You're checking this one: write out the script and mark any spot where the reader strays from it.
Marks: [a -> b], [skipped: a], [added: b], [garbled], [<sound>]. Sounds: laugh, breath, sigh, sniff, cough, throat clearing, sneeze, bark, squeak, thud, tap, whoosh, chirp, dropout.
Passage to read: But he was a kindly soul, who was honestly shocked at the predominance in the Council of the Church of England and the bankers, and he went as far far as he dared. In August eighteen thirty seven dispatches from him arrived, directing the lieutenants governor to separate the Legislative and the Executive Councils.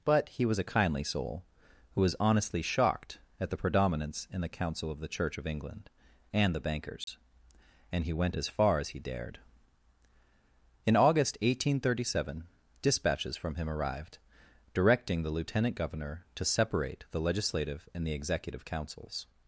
But he was a kindly soul, who was honestly shocked at the predominance in the Council of the Church of England and the bankers, [dropout] and he went as far [skipped: far] as he dared. In August eighteen thirty seven dispatches from him arrived, directing the [lieutenants -> lieutenant] governor to separate the Legislative and the Executive Councils.